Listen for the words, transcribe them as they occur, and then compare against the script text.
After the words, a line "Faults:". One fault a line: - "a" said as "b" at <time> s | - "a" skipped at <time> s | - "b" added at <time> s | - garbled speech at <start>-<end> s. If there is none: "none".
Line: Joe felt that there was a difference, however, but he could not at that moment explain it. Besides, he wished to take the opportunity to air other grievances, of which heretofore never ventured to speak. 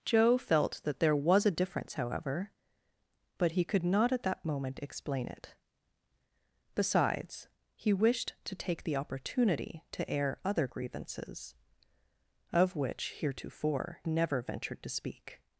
Joe felt that there was a difference, however, but he could not at that moment explain it. Besides, he wished to take the opportunity to air other grievances, of which heretofore never ventured to speak.
Faults:
none